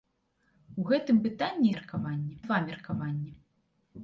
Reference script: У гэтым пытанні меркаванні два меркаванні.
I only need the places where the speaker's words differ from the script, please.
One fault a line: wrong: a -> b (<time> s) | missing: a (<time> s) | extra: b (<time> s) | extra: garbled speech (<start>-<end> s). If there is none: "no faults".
no faults